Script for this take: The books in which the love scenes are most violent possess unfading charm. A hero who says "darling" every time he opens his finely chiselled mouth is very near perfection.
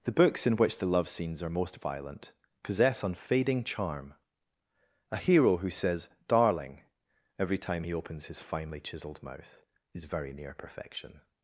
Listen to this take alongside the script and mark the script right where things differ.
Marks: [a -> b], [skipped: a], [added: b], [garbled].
The books in which the love scenes are most violent possess unfading charm. A hero who says "darling" every time he opens his finely chiselled mouth is very near perfection.